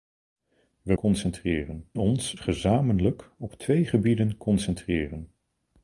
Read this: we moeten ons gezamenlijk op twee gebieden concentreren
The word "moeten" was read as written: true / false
false